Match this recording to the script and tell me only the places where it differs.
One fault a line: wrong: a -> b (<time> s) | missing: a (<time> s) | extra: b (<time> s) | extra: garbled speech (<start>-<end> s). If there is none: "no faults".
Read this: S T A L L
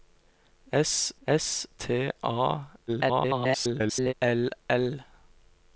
extra: s (1.3 s)
extra: garbled speech (2.9-4.1 s)